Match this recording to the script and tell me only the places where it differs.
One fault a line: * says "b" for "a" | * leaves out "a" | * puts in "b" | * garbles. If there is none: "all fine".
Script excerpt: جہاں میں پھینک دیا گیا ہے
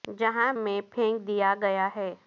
all fine